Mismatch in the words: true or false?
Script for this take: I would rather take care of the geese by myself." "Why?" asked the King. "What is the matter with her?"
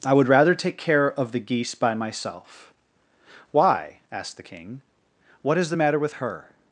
false